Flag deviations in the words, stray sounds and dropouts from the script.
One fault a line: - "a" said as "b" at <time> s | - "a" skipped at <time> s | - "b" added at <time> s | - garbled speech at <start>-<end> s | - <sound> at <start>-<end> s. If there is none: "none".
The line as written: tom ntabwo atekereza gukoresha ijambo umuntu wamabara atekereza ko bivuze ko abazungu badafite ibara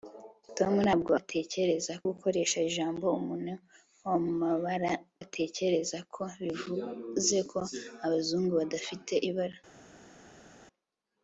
none